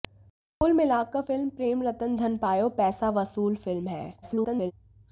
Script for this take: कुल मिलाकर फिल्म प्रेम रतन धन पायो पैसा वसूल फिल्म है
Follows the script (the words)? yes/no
no